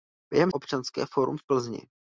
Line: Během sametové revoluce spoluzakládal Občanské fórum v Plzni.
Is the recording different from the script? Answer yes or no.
yes